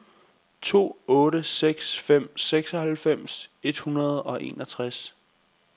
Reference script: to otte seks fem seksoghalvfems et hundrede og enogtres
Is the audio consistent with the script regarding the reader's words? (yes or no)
yes